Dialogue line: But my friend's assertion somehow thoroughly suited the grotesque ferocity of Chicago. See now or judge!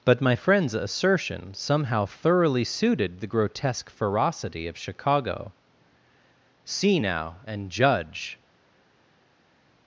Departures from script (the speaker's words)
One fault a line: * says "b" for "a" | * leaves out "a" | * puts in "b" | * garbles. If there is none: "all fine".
* says "and" for "or"